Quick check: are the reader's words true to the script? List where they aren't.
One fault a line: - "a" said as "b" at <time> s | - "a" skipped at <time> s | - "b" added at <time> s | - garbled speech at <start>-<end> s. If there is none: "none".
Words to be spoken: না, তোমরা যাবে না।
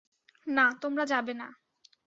none